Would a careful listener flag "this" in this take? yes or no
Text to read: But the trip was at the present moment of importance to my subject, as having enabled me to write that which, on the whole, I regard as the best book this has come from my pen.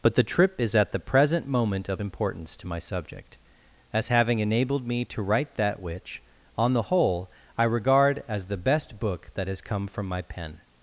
yes